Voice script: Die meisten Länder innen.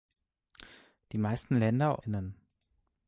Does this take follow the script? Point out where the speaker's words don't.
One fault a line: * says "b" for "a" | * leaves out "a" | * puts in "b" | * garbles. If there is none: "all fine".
all fine